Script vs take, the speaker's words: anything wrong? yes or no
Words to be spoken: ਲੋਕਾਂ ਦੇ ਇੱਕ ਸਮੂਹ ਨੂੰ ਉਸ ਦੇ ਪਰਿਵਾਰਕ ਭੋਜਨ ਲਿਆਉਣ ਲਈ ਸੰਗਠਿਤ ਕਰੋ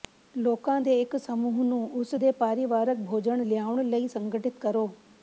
no